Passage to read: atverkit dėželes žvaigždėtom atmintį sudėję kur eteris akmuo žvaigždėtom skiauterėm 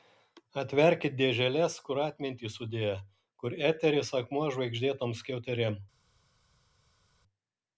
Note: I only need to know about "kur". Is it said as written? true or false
true